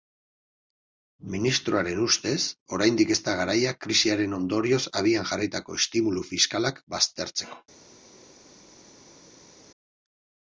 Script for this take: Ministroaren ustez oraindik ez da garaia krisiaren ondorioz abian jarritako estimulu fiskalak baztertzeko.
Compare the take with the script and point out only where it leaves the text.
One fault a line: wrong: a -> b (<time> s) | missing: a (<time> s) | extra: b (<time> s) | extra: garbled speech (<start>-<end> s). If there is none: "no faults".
no faults